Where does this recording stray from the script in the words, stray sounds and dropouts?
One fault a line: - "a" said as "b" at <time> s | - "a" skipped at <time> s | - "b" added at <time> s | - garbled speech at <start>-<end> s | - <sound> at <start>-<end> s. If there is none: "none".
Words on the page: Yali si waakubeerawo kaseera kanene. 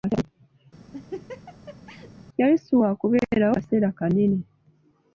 - laugh at 0.9-2.1 s